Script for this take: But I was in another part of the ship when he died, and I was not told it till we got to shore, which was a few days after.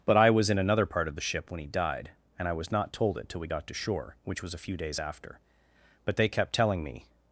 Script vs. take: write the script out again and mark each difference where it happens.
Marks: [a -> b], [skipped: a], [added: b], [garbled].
But I was in another part of the ship when he died, and I was not told it till we got to shore, which was a few days after. [added: But they kept telling me]